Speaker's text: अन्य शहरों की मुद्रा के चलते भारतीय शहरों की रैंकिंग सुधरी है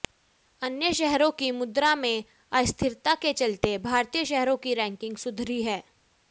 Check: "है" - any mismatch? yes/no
no